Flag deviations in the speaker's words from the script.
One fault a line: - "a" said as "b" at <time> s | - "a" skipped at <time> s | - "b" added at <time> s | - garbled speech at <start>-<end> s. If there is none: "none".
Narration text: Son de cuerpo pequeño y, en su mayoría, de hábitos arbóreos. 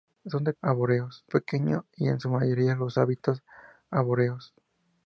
- "cuerpo" said as "arbóreos" at 0.6 s